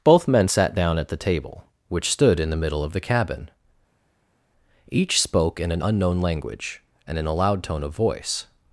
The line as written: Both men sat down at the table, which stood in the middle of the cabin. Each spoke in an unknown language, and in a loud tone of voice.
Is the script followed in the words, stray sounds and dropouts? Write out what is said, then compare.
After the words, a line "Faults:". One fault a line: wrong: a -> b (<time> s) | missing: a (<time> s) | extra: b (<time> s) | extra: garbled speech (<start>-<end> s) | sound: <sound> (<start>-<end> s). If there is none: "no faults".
Both men sat down at the table, which stood in the middle of the cabin. Each spoke in an unknown language, and in a loud tone of voice.
Faults:
no faults